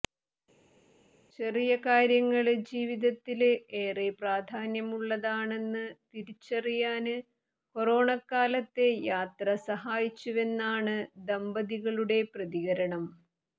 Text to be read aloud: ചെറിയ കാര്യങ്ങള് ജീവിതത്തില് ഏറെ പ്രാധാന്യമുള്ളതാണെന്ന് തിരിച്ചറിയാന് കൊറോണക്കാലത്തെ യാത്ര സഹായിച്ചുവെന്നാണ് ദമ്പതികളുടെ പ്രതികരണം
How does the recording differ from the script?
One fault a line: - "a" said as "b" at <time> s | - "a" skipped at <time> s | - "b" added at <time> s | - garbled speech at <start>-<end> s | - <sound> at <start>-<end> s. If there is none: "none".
none